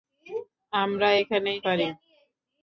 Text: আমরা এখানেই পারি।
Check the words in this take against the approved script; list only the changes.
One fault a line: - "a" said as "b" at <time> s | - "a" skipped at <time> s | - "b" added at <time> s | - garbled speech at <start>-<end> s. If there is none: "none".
none